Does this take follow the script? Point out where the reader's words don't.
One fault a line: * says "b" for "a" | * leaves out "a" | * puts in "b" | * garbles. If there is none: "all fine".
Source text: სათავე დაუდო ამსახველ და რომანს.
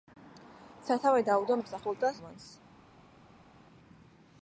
all fine